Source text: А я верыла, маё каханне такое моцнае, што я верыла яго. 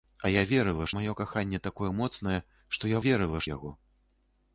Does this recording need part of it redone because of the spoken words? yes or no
no